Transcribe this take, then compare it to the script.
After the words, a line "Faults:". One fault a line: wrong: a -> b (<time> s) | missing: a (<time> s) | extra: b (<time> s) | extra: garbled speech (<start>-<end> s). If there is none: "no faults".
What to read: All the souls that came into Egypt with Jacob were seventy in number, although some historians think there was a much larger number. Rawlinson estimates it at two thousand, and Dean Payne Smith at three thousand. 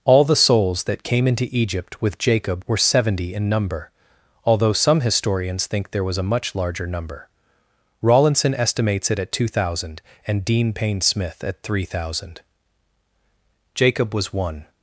All the souls that came into Egypt with Jacob were seventy in number, although some historians think there was a much larger number. Rawlinson estimates it at two thousand, and Dean Payne Smith at three thousand. Jacob was one
Faults:
extra: Jacob was one (13.7 s)